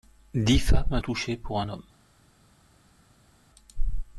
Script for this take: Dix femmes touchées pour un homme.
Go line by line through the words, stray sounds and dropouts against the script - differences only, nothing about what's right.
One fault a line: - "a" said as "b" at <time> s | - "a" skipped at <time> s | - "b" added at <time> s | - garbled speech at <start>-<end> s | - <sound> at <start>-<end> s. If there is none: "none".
none